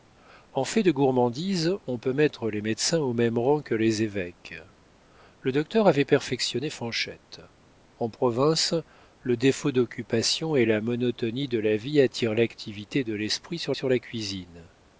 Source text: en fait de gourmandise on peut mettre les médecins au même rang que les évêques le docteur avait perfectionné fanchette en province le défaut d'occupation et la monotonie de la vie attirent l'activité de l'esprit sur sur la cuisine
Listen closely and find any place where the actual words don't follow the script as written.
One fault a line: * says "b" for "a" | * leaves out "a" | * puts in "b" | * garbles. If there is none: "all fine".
all fine